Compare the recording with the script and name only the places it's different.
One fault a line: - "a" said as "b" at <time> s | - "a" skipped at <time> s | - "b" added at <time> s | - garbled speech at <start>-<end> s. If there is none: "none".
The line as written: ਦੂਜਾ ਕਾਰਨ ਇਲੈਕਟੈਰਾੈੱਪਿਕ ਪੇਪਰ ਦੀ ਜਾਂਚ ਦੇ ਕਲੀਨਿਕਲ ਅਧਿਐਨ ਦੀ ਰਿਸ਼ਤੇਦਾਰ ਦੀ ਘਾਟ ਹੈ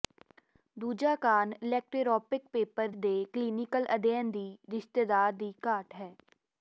- "ਦੀ ਜਾਂਚ" skipped at 2.9 s